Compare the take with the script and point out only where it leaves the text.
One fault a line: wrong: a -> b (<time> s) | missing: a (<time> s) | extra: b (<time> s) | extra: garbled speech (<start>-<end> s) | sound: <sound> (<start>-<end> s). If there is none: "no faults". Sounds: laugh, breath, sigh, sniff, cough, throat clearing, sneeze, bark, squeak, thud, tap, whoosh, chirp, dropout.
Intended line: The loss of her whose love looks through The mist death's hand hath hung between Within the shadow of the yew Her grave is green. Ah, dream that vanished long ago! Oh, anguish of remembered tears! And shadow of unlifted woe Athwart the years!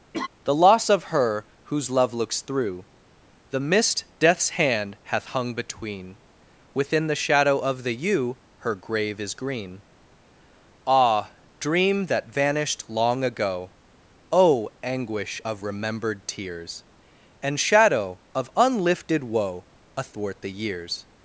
sound: laugh (0.1-0.3 s)